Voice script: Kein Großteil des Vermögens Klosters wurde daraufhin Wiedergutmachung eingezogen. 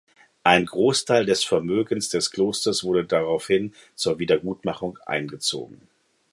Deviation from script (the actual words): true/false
true